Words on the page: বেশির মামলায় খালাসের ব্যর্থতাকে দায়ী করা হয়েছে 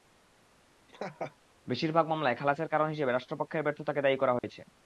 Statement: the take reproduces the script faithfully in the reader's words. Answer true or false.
false